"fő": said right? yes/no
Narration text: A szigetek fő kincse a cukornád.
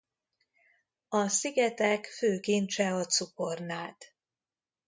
yes